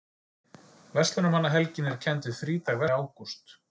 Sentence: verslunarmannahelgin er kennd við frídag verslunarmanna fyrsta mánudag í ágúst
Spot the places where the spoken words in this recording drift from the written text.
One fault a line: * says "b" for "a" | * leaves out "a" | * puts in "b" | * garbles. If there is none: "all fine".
* leaves out "verslunarmanna fyrsta mánudag"